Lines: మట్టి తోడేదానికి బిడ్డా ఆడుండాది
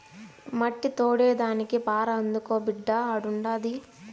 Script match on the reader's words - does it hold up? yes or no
no